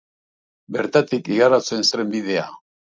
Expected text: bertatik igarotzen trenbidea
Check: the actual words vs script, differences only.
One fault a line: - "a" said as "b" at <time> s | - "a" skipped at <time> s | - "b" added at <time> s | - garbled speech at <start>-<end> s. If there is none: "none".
none